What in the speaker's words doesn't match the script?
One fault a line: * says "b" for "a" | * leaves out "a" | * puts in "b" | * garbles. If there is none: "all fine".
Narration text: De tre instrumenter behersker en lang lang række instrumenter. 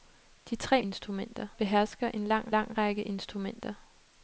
all fine